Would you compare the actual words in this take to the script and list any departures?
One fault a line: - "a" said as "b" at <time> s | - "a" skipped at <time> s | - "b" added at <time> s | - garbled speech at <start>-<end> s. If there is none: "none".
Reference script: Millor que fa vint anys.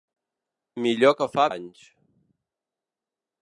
- "vint" skipped at 1.4 s